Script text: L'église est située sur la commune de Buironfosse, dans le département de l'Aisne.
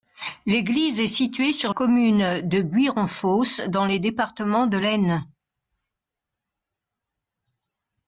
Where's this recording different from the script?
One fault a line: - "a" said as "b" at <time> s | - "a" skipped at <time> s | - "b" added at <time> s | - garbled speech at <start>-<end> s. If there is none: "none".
- "la" skipped at 1.8 s